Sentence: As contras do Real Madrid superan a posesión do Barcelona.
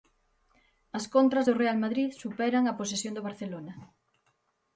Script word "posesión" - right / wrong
right